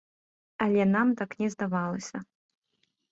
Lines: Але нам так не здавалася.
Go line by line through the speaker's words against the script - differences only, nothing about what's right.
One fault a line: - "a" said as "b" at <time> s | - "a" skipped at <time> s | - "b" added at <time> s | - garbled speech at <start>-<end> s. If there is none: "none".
none